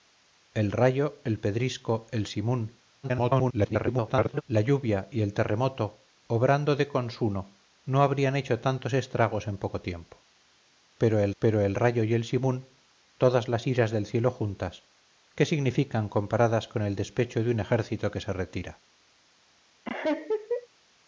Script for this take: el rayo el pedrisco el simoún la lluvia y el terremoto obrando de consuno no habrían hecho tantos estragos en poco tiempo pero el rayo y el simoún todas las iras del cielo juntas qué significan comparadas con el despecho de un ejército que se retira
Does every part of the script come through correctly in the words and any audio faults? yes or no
no